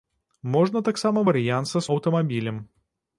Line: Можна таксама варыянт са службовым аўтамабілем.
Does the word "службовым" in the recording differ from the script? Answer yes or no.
yes